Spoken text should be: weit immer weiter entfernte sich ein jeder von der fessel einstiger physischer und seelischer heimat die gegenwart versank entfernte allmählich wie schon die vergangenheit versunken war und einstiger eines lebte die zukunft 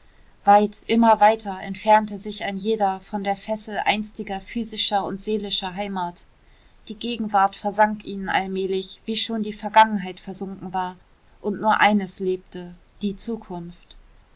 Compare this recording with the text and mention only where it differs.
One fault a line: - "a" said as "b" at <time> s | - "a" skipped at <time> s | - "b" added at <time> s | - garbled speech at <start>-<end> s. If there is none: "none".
- "entfernte" said as "ihnen" at 8.0 s
- "einstiger" said as "nur" at 11.6 s